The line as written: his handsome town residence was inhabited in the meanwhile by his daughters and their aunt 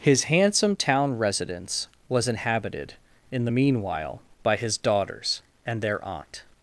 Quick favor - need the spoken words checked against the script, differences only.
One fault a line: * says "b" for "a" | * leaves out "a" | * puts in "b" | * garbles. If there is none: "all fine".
all fine